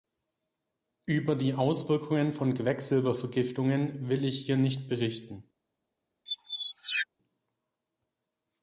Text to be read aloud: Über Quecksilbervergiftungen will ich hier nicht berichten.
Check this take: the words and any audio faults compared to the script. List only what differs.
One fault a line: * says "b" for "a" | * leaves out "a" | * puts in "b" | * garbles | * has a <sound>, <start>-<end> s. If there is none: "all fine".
* puts in "die Auswirkungen von"
* has a squeak, 6.3-7.1 s